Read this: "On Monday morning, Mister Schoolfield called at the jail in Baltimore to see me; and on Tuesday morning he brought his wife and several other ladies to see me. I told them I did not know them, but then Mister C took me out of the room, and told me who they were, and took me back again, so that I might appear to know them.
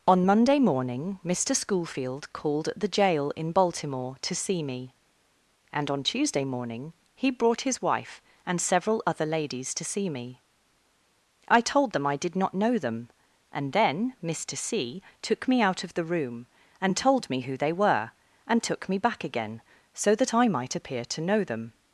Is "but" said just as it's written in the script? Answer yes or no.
no